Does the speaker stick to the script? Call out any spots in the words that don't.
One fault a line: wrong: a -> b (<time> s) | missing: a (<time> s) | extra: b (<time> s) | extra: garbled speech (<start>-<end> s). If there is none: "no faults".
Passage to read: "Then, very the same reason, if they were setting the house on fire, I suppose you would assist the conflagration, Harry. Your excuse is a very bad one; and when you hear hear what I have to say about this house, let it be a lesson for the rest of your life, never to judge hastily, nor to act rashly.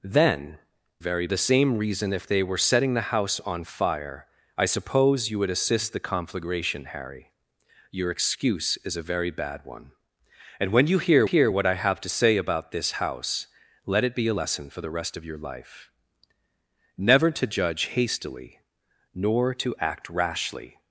no faults